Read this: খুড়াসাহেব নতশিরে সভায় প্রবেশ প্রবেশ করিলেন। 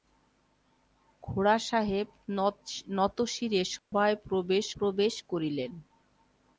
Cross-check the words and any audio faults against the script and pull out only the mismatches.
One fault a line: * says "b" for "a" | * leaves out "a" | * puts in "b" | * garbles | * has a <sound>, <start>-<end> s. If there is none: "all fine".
* has a dropout, 3.8-3.9 s